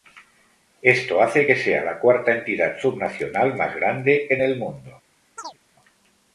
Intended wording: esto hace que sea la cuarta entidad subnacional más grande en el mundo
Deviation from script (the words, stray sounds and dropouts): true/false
true